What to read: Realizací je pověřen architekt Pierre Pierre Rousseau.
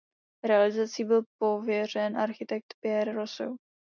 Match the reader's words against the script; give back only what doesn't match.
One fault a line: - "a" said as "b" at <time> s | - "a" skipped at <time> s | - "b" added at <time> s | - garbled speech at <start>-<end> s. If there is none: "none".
- "je" said as "byl" at 1.0 s
- "Pierre" skipped at 3.1 s